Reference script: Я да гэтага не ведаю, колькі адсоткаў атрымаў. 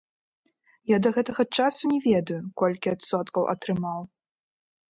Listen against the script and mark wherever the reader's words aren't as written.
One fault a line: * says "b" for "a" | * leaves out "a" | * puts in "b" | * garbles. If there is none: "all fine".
* puts in "часу"